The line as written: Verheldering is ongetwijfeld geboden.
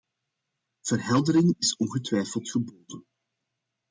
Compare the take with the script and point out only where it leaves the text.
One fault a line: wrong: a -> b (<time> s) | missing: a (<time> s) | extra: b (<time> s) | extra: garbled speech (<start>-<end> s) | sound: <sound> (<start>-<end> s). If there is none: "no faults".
no faults